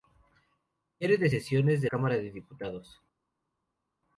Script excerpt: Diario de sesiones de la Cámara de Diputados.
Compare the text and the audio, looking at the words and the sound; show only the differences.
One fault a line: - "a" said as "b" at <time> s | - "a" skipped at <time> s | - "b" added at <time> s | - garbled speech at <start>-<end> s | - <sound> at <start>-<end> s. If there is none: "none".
- "la" skipped at 1.9 s